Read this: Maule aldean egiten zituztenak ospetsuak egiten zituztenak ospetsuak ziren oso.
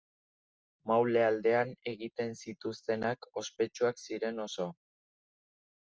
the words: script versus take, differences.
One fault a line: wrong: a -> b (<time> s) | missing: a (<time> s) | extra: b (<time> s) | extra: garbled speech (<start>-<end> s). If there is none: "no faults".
missing: egiten zituztenak ospetsuak (4.0 s)